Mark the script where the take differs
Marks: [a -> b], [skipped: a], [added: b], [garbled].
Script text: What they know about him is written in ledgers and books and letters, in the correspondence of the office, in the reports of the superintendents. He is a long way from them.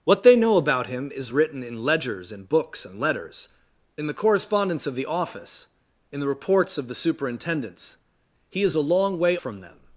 What they know about him is written in ledgers and books and letters, in the correspondence of the office, in the reports of the superintendents. He is a long way from them.